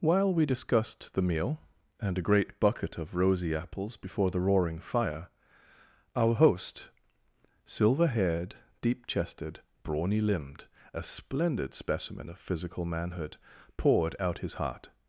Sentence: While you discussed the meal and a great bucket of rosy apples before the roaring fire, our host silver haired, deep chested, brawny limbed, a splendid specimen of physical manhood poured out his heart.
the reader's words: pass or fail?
fail